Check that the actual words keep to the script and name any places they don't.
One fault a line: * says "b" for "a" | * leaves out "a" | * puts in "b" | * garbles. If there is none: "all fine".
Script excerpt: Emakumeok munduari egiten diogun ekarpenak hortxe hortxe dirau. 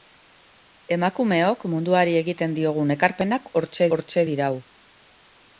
all fine